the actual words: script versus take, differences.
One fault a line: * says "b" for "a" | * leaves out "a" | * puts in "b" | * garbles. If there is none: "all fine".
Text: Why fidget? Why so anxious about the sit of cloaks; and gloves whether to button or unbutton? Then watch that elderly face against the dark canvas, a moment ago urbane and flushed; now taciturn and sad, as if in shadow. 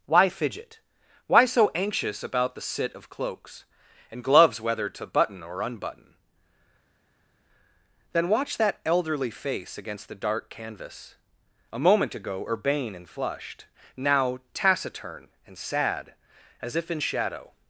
all fine